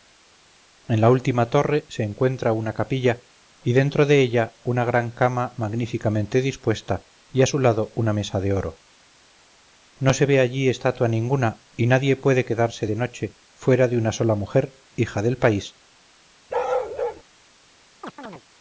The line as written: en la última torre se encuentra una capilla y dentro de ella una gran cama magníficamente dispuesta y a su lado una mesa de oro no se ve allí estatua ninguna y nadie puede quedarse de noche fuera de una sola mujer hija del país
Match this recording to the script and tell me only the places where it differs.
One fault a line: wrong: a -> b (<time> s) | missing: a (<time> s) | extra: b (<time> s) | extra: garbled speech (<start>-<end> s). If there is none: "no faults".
no faults